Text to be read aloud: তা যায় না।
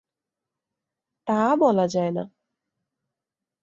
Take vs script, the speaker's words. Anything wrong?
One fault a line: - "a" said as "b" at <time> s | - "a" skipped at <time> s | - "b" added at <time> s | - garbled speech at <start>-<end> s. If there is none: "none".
- "বলা" added at 1.6 s